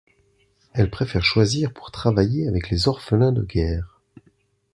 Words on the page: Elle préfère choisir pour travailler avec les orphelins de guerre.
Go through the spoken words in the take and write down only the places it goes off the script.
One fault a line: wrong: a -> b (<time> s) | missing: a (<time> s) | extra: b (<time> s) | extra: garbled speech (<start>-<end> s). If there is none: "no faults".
no faults